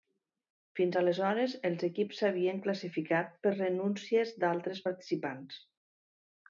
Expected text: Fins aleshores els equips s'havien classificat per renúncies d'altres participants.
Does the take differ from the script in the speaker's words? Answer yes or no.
no